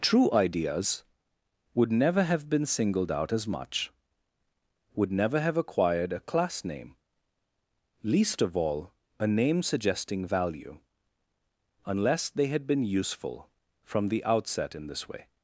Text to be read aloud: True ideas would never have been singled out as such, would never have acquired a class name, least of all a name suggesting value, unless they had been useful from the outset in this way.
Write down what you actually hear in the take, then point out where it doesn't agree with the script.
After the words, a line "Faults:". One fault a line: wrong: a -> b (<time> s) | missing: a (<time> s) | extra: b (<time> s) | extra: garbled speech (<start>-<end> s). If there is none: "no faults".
True ideas would never have been singled out as much, would never have acquired a class name, least of all a name suggesting value, unless they had been useful from the outset in this way.
Faults:
wrong: such -> much (3.5 s)